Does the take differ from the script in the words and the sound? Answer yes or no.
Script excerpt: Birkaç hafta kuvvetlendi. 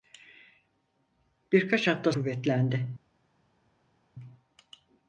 no